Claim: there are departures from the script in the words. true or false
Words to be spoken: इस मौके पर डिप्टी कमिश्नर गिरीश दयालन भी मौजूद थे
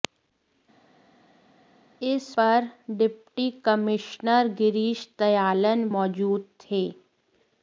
true